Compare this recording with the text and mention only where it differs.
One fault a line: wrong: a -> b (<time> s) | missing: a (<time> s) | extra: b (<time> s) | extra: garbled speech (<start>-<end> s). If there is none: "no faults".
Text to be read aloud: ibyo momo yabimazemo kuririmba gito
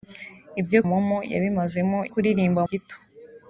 no faults